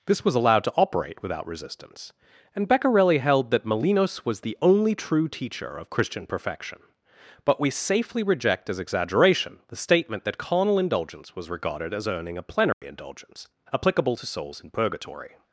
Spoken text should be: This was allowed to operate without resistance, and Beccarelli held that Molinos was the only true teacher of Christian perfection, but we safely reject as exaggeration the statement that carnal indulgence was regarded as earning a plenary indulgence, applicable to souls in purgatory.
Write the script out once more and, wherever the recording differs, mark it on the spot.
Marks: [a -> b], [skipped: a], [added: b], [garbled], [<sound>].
This was allowed to operate without resistance, and Beccarelli held that Molinos was the only true teacher of Christian perfection, but we safely reject as exaggeration the statement that carnal indulgence was regarded as earning a plenary [dropout] indulgence, applicable to souls in purgatory.